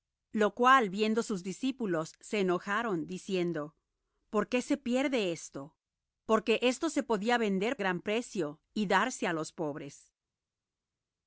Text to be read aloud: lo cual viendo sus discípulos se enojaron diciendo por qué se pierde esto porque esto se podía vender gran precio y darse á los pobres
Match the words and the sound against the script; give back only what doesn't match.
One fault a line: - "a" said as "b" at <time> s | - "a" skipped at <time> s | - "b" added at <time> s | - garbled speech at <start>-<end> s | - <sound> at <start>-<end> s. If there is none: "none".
none